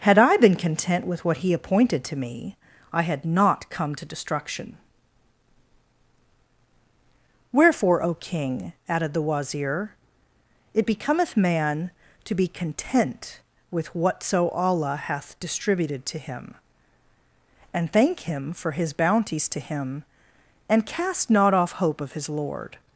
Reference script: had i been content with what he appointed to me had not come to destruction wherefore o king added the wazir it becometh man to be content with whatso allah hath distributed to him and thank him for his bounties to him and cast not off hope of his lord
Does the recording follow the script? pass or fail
fail